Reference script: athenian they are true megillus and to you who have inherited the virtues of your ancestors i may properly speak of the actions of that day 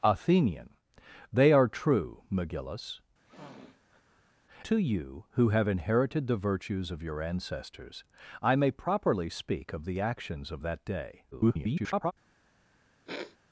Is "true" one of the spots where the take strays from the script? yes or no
no